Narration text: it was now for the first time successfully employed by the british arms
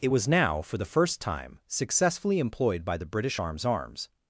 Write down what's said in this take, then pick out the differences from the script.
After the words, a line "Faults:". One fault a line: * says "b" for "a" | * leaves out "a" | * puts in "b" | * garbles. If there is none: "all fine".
it was now for the first time successfully employed by the british arms arms
Faults:
* puts in "arms"